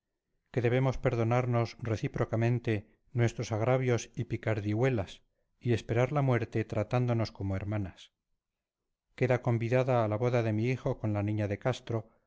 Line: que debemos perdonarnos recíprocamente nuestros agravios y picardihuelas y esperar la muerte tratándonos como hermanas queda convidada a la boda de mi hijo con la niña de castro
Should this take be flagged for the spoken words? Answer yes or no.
no